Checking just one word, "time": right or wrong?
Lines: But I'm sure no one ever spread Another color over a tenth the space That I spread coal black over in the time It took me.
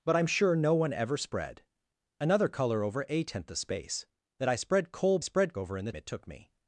wrong